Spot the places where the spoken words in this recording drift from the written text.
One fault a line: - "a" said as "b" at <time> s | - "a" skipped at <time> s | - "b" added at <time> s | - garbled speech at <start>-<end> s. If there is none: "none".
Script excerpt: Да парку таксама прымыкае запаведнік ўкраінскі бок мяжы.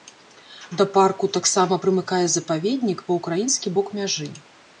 - "па" added at 3.1 s